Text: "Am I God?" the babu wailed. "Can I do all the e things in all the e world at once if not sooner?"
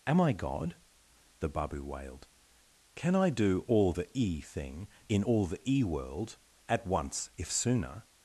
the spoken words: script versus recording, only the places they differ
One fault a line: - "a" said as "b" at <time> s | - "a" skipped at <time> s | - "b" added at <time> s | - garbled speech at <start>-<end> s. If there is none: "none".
- "things" said as "thing" at 4.4 s
- "not" skipped at 7.5 s